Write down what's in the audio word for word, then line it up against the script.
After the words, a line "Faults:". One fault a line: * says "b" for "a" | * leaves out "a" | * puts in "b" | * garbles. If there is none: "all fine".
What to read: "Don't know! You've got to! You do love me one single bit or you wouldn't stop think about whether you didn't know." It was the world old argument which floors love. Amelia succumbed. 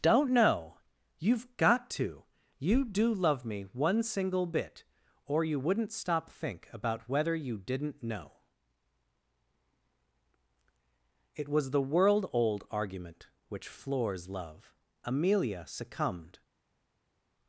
"Don't know! You've got to! You do love me one single bit or you wouldn't stop think about whether you didn't know." It was the world old argument which floors love. Amelia succumbed.
Faults:
all fine